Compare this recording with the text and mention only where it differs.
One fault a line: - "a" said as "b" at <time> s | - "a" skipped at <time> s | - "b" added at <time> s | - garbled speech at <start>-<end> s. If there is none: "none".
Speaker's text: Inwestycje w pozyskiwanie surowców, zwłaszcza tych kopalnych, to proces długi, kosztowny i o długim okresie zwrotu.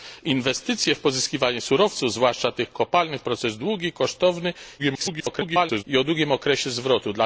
- "to" skipped at 3.2 s
- garbled speech at 4.8-5.8 s